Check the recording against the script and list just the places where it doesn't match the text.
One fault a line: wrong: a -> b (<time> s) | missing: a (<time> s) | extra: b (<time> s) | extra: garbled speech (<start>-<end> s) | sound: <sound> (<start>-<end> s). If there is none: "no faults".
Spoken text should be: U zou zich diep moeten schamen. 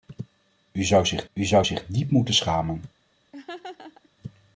extra: u zou zich (1.3 s)
sound: laugh (3.3-4.1 s)